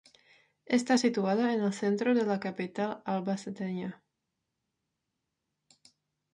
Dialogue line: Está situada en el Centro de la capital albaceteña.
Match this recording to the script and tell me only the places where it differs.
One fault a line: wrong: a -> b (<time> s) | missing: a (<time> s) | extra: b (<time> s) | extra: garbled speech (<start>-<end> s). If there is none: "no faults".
no faults